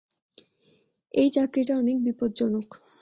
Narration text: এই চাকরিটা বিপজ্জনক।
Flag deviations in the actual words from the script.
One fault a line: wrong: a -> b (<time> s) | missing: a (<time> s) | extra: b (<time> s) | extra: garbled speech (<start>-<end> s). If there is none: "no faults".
extra: অনেক (1.8 s)